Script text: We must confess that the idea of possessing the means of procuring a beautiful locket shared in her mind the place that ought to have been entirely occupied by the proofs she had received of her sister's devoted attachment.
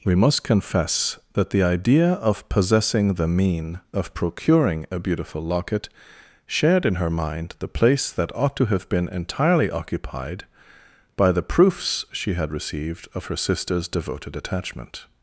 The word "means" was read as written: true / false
false